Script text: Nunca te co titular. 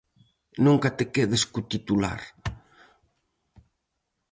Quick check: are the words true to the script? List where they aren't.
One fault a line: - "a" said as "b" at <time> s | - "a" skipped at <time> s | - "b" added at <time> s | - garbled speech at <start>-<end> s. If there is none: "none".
- "quedes" added at 1.1 s